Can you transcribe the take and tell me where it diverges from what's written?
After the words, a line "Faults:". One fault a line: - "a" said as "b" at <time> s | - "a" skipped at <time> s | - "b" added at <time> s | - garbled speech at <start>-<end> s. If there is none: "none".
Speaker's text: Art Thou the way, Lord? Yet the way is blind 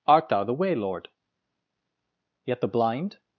Art Thou the way, Lord? Yet the blind
Faults:
- "way is" skipped at 2.7 s